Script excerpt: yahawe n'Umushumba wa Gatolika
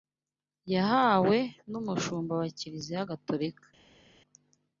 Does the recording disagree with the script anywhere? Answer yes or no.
yes